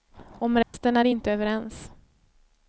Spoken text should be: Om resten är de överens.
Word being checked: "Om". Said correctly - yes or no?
yes